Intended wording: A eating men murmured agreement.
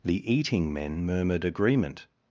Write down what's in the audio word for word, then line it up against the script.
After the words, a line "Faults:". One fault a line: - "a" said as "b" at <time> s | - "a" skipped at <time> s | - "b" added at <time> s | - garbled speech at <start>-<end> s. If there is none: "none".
The eating men murmured agreement.
Faults:
- "A" said as "The" at 0.0 s